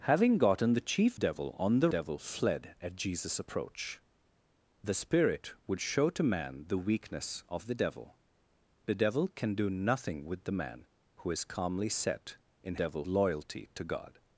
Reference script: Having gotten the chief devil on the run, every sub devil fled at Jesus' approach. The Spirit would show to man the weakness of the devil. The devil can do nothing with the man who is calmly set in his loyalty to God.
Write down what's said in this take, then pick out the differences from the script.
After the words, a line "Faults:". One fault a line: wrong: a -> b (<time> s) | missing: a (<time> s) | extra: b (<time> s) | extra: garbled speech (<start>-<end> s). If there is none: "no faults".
Having gotten the chief devil on the devil fled at Jesus' approach. The Spirit would show to man the weakness of the devil. The devil can do nothing with the man who is calmly set in devil loyalty to God.
Faults:
missing: run every sub (1.9 s)
wrong: his -> devil (12.8 s)